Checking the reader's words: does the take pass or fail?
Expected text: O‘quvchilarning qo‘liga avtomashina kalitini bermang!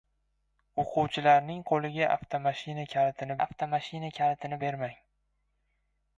fail